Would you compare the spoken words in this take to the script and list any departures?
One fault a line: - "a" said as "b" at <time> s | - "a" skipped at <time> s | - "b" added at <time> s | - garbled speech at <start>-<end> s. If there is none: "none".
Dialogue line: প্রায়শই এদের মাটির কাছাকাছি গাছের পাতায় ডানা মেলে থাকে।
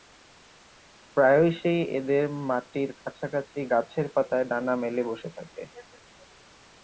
- "বসে" added at 5.1 s